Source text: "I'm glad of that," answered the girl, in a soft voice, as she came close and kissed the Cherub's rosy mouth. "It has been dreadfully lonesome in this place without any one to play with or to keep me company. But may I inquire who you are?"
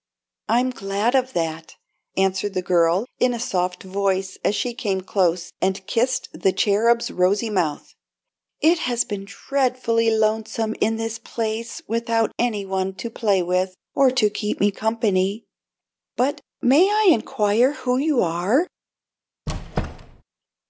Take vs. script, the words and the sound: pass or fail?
fail